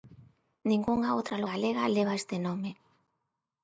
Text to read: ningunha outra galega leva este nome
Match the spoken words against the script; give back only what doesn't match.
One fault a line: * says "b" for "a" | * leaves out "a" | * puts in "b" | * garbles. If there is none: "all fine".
all fine